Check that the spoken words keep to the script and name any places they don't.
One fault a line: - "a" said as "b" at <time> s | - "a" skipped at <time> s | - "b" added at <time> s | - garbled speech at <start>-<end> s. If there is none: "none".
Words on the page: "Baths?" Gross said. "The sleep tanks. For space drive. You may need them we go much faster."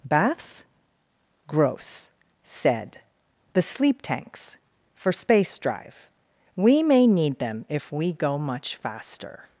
- "You" said as "We" at 6.5 s
- "if" added at 7.7 s